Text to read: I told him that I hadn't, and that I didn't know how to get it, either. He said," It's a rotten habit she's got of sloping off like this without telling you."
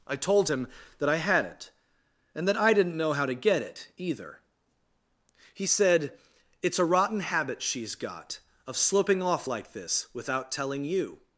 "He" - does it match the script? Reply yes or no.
yes